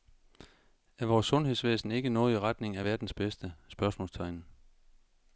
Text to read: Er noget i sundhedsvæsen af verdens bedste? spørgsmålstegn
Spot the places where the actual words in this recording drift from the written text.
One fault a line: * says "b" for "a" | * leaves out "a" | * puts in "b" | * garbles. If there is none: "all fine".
* puts in "vores sundhedsvæsen ikke"
* says "retning" for "sundhedsvæsen"